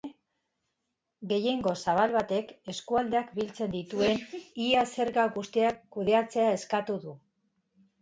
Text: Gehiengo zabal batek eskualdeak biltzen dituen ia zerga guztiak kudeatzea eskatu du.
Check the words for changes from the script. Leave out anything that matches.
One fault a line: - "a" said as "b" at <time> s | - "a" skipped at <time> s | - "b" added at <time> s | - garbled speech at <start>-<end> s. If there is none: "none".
none